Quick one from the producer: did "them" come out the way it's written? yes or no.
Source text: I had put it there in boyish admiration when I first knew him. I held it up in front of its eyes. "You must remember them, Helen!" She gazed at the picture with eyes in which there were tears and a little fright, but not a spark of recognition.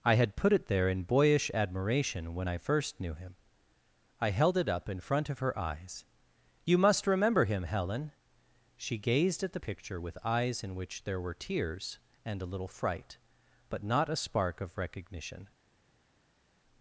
no